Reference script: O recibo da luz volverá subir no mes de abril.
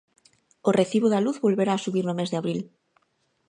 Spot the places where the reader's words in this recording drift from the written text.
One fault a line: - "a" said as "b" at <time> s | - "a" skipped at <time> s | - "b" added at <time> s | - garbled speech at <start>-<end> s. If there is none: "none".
none